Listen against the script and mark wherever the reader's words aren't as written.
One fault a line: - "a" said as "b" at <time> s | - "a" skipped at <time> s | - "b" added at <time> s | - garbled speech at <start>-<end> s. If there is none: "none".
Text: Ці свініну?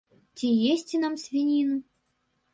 - "есці нам" added at 0.7 s